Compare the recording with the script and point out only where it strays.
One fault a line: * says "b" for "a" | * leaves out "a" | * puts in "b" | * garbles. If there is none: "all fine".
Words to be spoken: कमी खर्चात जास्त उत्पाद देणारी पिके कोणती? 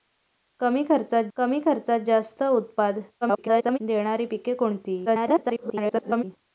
* puts in "कमी खर्चात"
* garbles
* garbles